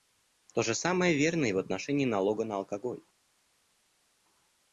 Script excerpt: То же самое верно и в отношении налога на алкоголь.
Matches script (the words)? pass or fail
pass